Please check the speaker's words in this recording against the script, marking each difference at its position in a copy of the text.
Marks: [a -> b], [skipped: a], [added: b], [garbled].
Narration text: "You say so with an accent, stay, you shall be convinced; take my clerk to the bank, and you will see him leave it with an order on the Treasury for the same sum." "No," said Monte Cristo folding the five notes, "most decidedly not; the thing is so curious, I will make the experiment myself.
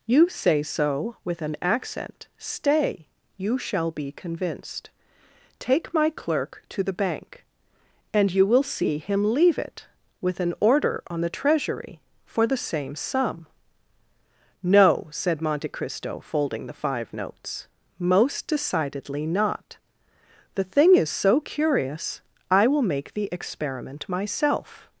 "You say so with an accent, stay, you shall be convinced; take my clerk to the bank, and you will see him leave it with an order on the Treasury for the same sum." "No," said Monte Cristo folding the five notes, "most decidedly not; the thing is so curious, I will make the experiment myself.